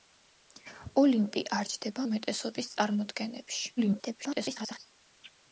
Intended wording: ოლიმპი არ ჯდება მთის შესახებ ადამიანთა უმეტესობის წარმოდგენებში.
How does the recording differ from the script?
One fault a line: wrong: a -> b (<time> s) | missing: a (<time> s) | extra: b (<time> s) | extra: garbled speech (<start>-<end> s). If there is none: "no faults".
missing: მთის შესახებ ადამიანთა (2.0 s)
extra: garbled speech (3.8-4.8 s)